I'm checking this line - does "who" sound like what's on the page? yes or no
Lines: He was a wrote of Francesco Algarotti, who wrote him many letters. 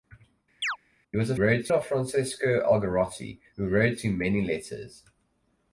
yes